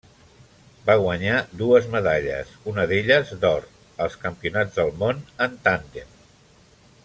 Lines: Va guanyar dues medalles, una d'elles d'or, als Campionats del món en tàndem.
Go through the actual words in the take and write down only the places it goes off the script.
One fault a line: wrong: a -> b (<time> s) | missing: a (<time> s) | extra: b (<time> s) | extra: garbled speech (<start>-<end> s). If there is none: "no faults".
no faults